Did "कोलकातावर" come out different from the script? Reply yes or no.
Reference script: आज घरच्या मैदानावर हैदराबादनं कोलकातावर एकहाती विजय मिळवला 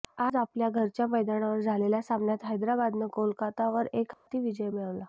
no